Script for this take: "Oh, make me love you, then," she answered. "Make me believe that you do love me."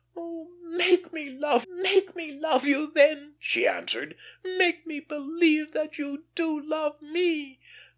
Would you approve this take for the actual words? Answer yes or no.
no